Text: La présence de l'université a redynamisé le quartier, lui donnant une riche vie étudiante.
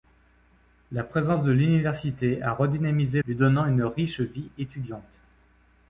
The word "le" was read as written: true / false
false